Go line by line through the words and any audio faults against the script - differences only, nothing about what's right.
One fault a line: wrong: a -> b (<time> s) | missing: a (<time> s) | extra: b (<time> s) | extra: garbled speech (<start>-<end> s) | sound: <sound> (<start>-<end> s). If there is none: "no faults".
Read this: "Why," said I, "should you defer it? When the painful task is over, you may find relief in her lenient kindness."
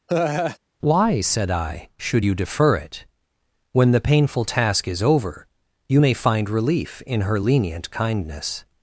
sound: laugh (0.1-0.6 s)